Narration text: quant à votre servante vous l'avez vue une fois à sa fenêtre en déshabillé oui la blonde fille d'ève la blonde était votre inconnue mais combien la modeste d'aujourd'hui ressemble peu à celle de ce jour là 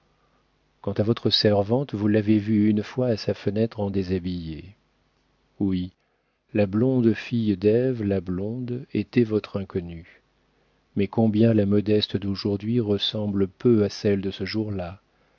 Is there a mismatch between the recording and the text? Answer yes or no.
no